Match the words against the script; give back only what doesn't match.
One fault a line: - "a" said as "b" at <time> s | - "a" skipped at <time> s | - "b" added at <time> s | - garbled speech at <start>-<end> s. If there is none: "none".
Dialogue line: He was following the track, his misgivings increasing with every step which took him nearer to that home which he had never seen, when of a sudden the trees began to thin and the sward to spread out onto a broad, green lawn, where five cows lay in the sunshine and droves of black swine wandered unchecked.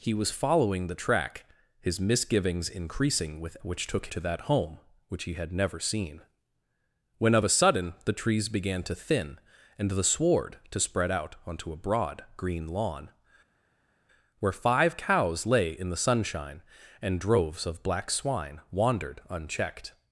- "every step" skipped at 3.5 s
- "him nearer" skipped at 4.1 s